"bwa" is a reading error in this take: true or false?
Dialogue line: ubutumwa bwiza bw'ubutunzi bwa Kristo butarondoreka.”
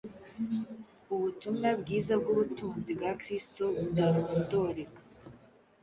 false